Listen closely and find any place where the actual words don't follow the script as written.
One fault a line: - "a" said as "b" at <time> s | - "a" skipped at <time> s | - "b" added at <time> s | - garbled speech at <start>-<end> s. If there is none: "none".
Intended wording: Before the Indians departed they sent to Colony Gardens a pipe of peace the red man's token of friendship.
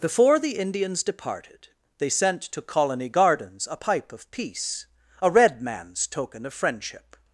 - "the" said as "a" at 5.2 s